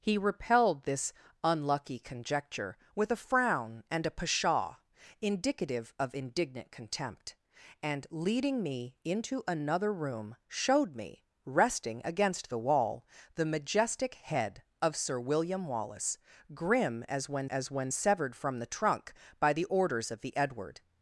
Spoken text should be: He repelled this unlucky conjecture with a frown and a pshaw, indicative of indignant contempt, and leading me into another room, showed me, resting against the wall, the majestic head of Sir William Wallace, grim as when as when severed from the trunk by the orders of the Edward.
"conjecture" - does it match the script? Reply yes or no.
yes